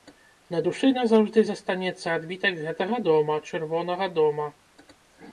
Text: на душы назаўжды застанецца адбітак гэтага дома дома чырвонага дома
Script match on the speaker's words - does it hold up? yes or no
no